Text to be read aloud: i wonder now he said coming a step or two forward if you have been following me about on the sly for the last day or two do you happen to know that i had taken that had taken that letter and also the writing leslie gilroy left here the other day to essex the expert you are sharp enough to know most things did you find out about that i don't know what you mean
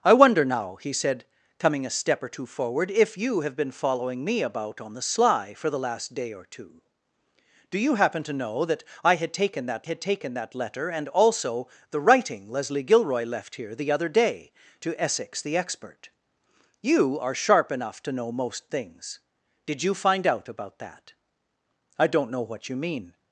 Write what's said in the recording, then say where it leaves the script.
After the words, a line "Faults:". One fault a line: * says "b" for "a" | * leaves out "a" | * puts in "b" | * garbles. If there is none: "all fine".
i wonder now he said coming a step or two forward if you have been following me about on the sly for the last day or two do you happen to know that i had taken that had taken that letter and also the writing leslie gilroy left here the other day to essex the expert you are sharp enough to know most things did you find out about that i don't know what you mean
Faults:
all fine